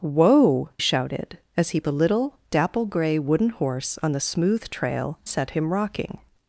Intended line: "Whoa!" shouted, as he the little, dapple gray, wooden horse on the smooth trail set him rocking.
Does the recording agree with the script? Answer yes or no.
yes